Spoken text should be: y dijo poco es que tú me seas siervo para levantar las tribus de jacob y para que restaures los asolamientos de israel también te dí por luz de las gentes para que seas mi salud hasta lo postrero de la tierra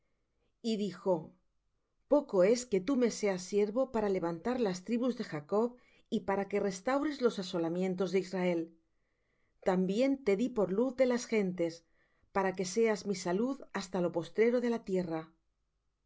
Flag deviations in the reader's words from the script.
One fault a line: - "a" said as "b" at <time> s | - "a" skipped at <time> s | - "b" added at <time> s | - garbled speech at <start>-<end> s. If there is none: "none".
none